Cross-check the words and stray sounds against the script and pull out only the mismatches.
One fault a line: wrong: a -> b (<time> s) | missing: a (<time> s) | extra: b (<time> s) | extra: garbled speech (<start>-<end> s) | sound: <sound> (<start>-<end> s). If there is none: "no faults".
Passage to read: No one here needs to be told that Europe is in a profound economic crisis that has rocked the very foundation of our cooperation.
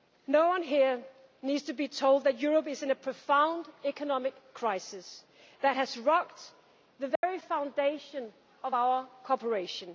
sound: dropout (7.2-7.2 s)